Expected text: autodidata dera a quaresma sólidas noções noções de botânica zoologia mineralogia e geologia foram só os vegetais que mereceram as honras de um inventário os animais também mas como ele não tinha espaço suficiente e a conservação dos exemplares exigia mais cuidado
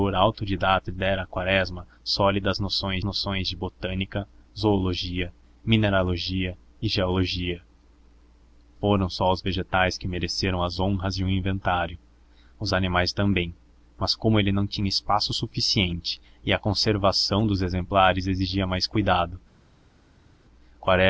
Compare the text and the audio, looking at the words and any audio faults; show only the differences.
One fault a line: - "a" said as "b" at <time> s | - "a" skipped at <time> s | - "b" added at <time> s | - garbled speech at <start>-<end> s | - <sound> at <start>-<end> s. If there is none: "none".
none